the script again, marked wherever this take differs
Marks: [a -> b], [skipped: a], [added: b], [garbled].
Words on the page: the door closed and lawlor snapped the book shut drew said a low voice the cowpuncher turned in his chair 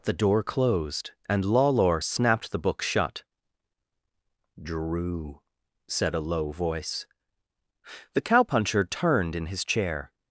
the door closed and lawlor snapped the book shut drew said a low voice the cowpuncher turned in his chair